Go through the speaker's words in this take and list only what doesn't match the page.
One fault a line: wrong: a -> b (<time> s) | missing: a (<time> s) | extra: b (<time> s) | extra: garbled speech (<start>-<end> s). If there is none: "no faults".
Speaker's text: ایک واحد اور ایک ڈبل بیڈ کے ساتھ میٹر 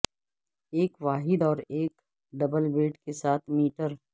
no faults